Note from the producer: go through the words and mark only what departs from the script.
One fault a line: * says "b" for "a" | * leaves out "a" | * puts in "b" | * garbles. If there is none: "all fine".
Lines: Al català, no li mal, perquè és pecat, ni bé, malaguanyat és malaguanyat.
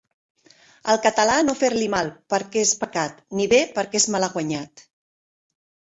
* puts in "fer"
* says "perquè" for "malaguanyat"